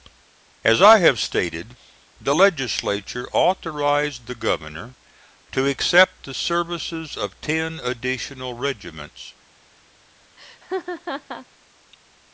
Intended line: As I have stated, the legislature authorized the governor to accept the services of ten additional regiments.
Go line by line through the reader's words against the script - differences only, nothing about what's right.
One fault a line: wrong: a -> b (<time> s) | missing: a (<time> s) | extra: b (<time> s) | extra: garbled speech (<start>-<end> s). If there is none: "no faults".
no faults